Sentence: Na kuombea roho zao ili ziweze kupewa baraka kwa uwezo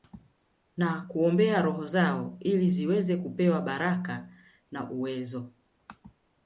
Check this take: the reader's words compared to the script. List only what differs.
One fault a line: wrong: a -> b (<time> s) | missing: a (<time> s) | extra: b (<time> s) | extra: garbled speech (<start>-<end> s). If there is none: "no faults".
wrong: kwa -> na (4.7 s)